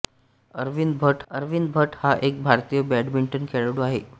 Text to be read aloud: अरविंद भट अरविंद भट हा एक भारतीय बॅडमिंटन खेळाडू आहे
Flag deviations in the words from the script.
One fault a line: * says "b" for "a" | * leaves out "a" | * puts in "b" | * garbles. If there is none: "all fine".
all fine